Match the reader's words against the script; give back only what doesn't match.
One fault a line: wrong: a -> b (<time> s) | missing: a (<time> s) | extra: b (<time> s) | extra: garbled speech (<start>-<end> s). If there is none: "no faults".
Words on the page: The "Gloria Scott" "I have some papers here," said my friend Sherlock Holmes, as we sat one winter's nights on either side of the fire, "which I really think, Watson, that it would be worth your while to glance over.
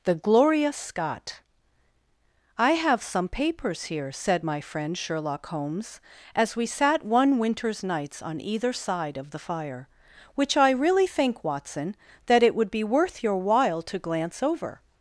no faults